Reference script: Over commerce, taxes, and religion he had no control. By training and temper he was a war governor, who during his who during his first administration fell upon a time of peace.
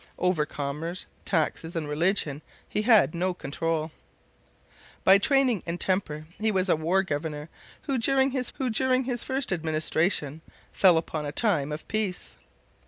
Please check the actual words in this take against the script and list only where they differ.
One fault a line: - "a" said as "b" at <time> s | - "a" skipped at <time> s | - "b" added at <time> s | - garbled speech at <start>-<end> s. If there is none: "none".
none